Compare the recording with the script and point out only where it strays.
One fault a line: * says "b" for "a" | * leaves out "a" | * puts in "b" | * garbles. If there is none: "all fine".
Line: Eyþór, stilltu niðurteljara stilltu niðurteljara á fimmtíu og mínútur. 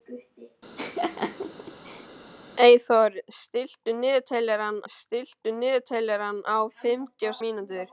all fine